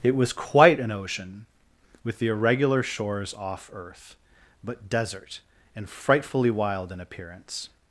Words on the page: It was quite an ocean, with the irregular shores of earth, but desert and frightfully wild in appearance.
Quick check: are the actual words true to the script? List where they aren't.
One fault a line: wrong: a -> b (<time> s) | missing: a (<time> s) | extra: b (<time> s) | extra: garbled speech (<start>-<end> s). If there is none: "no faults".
wrong: of -> off (3.3 s)